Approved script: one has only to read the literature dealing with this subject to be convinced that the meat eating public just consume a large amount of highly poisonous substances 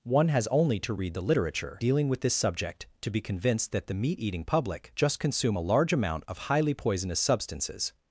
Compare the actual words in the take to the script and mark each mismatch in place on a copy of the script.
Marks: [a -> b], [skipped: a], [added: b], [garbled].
one has only to read the literature dealing with this subject to be convinced that the meat eating public just consume a large amount of highly poisonous substances